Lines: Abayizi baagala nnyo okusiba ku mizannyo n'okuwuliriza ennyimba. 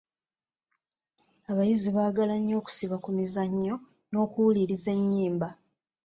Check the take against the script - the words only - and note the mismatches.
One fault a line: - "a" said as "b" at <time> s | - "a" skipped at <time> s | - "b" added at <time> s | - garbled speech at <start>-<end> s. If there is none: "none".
none